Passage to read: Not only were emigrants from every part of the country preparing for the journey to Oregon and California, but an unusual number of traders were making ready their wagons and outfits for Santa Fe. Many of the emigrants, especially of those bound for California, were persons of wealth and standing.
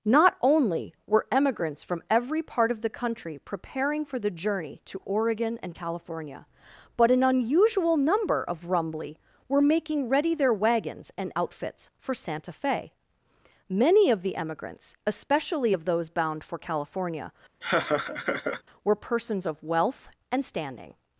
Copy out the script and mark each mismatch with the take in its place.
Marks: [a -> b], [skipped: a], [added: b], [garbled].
Not only were emigrants from every part of the country preparing for the journey to Oregon and California, but an unusual number of [traders -> rumbly] were making ready their wagons and outfits for Santa Fe. Many of the emigrants, especially of those bound for California, were persons of wealth and standing.